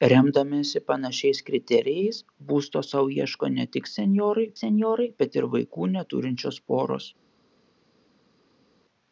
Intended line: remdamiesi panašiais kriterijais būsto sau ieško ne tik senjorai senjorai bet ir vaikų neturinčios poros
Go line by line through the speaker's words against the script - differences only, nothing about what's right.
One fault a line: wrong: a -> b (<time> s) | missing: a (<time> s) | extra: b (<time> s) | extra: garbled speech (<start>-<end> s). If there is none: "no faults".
no faults